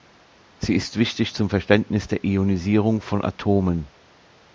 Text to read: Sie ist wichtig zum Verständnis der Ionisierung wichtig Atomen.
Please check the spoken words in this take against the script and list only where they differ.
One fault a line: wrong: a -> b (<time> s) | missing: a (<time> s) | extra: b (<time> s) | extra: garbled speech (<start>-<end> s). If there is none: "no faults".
wrong: wichtig -> von (3.0 s)